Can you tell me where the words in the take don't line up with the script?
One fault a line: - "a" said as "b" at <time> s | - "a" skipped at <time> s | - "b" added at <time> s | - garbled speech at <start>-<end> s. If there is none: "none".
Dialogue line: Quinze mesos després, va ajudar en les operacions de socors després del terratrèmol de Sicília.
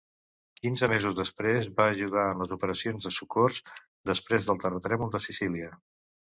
none